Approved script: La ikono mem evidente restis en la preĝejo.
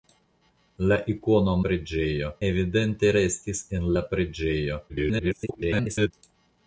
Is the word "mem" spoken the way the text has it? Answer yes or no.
no